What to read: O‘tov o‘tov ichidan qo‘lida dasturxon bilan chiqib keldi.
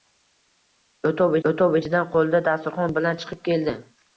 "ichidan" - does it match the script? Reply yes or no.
yes